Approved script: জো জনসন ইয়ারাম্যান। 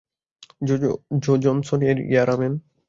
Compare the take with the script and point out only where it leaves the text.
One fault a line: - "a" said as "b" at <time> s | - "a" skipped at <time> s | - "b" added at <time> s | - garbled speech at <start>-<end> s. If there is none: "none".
- "এর" added at 1.8 s